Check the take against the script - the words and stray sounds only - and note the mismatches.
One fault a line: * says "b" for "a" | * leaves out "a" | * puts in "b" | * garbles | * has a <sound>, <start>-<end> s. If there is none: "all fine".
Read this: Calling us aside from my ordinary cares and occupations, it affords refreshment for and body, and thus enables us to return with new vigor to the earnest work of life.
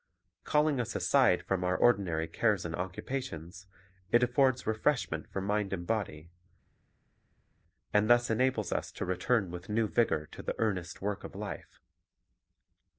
* says "our" for "my"
* puts in "mind"